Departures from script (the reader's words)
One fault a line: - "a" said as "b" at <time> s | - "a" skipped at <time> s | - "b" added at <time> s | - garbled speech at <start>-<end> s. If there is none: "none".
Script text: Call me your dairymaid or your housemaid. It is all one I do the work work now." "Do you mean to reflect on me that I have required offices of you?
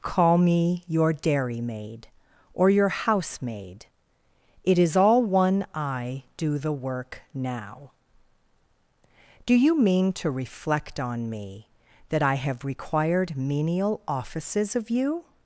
- "work" skipped at 7.2 s
- "menial" added at 13.4 s